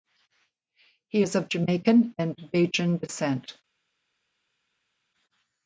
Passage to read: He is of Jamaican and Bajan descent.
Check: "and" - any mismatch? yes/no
no